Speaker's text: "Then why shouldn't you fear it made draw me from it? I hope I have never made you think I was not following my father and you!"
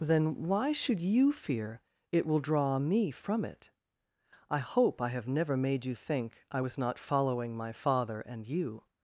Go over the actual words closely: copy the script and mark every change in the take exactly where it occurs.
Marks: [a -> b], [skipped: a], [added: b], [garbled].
"Then why [shouldn't -> should] you fear it [made -> will] draw me from it? I hope I have never made you think I was not following my father and you!"